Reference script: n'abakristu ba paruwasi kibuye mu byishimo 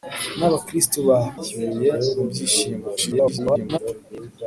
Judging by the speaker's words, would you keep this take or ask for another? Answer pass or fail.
fail